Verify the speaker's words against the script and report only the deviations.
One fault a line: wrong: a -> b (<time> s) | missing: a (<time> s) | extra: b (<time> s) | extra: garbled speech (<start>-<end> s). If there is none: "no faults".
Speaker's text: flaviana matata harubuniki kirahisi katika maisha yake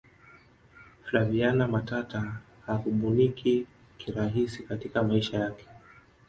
no faults